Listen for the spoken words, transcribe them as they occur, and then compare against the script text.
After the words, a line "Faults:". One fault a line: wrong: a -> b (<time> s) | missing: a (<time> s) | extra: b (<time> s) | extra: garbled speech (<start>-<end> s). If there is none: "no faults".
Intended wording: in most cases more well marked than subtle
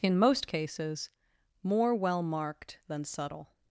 in most cases more well marked than subtle
Faults:
no faults